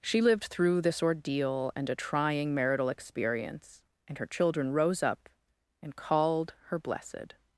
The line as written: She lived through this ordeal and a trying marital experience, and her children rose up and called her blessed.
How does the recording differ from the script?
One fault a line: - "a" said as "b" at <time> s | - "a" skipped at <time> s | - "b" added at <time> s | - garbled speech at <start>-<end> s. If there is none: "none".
none